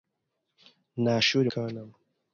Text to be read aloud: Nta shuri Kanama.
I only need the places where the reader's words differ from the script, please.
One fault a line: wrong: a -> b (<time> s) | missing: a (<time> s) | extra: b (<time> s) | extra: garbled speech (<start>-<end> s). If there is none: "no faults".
no faults